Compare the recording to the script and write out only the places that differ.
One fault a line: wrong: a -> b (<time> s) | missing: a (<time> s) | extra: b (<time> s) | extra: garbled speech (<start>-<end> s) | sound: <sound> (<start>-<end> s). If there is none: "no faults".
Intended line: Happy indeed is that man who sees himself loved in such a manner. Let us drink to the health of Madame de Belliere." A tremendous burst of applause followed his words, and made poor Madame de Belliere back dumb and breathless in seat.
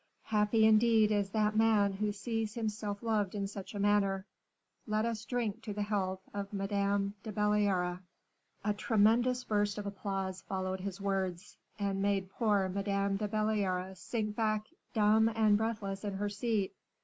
extra: sink (13.9 s)
extra: her (16.1 s)